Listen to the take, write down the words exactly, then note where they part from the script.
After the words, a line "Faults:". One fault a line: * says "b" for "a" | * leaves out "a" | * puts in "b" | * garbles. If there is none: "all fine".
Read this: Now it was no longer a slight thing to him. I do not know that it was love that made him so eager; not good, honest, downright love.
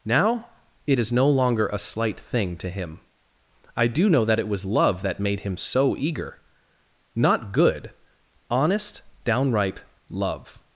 Now it is no longer a slight thing to him. I do know that it was love that made him so eager; not good, honest, downright love.
Faults:
* says "is" for "was"
* leaves out "not"